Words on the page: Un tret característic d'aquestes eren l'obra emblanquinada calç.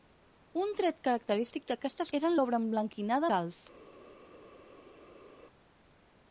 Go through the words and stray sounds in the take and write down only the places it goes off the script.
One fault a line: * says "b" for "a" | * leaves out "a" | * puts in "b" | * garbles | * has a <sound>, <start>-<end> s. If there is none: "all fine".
all fine